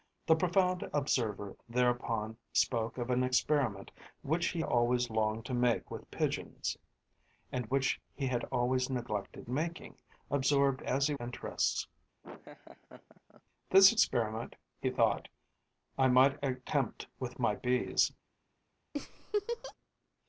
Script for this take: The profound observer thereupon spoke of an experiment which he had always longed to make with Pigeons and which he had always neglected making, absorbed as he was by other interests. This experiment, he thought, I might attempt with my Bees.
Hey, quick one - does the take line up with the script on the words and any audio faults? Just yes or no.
no